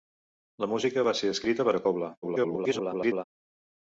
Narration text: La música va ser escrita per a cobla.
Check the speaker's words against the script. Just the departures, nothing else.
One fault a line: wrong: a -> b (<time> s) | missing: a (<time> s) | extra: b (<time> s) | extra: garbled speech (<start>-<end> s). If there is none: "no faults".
extra: garbled speech (2.2-3.2 s)